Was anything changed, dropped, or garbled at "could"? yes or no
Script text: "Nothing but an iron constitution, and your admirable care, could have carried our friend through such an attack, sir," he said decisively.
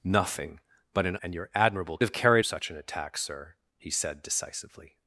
yes